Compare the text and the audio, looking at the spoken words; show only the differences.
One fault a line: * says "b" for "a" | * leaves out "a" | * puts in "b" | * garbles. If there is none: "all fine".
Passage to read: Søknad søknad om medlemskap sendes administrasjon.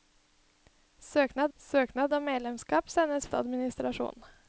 all fine